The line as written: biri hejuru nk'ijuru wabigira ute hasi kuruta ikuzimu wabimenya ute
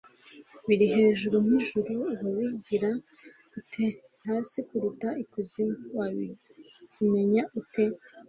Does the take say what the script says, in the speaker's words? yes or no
yes